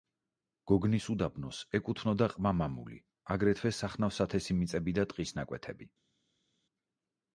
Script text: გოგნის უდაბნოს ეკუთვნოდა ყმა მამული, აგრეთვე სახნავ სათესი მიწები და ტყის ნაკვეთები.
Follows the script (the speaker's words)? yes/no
yes